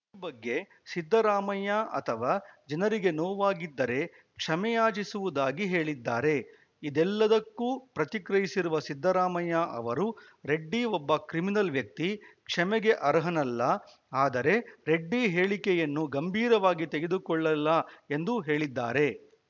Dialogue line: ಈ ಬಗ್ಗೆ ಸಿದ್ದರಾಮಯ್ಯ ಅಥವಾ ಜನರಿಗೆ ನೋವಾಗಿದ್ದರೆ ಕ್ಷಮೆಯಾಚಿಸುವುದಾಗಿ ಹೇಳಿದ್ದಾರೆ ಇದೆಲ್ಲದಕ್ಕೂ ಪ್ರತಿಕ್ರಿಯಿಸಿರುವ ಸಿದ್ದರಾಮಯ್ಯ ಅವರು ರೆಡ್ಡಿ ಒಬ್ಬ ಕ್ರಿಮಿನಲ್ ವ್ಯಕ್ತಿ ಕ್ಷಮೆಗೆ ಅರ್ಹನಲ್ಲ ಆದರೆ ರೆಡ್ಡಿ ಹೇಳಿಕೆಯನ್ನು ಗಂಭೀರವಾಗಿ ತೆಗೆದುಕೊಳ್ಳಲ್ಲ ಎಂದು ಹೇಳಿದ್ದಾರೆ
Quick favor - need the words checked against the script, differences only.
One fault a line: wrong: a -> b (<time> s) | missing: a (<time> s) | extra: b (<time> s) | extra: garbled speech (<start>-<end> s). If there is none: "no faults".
no faults